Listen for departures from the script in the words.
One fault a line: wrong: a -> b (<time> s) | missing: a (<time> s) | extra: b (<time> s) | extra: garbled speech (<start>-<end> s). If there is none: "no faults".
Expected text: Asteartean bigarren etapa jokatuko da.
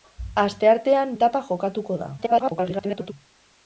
missing: bigarren (1.1 s)
extra: garbled speech (2.2-3.1 s)